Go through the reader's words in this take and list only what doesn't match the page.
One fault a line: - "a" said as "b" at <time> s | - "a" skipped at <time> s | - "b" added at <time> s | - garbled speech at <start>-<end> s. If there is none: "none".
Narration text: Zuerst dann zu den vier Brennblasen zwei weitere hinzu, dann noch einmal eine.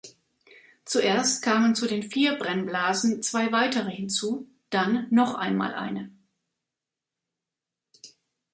- "dann" said as "kamen" at 1.4 s